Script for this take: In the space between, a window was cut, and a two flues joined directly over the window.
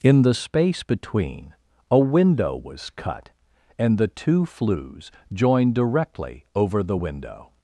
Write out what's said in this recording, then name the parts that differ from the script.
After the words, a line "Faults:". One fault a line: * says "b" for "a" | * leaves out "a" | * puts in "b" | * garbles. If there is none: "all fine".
In the space between, a window was cut, and the two flues joined directly over the window.
Faults:
* says "the" for "a"